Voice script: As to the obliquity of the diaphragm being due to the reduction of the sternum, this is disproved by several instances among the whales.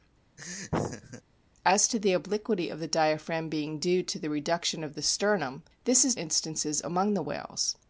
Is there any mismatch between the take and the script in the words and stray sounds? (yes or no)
yes